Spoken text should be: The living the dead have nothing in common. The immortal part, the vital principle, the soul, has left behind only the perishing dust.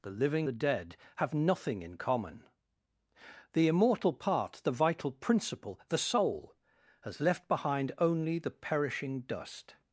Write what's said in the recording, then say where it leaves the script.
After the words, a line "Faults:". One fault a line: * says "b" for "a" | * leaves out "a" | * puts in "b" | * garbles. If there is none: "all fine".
The living the dead have nothing in common. The immortal part, the vital principle, the soul, has left behind only the perishing dust.
Faults:
all fine